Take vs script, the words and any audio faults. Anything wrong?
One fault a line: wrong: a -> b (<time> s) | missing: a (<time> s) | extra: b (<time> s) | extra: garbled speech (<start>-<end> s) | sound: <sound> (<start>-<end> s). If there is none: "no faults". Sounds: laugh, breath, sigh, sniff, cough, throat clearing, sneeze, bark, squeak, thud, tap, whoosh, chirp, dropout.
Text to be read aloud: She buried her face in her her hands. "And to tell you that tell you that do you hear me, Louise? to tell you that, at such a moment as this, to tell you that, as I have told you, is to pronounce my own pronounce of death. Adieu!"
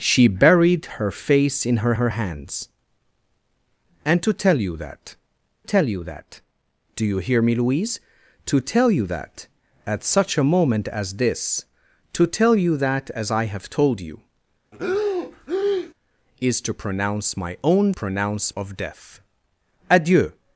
sound: breath (14.7-15.9 s)